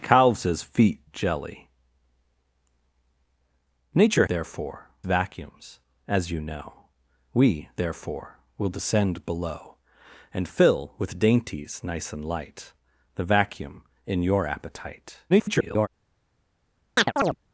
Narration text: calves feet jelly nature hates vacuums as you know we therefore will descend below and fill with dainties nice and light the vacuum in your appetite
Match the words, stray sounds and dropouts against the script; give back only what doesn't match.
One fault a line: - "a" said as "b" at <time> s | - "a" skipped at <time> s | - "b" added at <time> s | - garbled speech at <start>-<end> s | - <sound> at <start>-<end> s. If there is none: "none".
- "hates" said as "therefore" at 4.3 s
- garbled speech at 15.3-15.9 s
- chirp at 17.0-17.4 s